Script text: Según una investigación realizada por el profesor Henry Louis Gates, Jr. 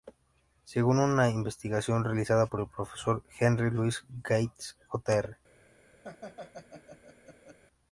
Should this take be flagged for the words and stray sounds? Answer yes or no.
yes